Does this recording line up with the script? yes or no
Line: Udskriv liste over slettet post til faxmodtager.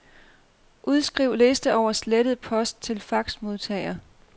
yes